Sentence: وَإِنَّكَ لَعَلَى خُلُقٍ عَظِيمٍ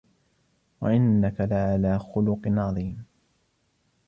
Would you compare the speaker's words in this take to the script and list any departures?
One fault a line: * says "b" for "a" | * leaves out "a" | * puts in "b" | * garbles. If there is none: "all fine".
all fine